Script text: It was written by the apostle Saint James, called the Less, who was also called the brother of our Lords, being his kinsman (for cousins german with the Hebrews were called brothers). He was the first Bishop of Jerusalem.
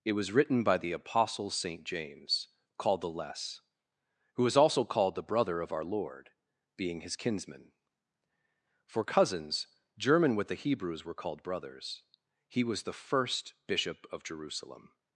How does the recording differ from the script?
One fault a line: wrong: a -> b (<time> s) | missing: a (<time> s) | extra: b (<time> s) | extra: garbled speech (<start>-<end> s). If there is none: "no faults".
wrong: Lords -> Lord (5.8 s)